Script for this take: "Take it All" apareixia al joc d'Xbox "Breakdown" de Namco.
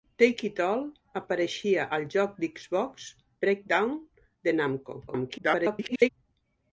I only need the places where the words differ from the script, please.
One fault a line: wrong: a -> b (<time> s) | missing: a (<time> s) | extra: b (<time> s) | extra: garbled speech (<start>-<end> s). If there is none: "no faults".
extra: garbled speech (5.1-6.1 s)